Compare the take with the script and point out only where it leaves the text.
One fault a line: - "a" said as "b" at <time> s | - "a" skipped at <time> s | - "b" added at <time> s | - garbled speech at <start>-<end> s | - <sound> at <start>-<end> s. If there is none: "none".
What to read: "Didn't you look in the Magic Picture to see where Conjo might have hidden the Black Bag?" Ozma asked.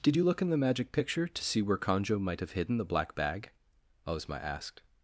- "Didn't" said as "Did" at 0.0 s